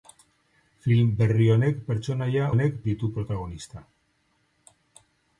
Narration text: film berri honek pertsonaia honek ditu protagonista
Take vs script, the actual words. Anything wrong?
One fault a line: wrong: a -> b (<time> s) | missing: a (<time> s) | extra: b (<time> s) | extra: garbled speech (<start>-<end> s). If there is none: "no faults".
no faults